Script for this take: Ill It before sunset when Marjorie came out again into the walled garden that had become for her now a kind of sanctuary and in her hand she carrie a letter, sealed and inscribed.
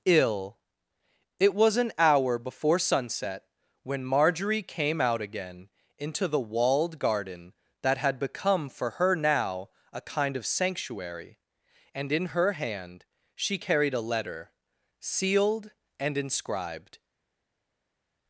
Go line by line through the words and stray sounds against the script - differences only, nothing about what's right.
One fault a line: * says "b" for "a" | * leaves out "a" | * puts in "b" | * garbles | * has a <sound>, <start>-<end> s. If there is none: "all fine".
* puts in "was an hour"
* says "carried" for "carrie"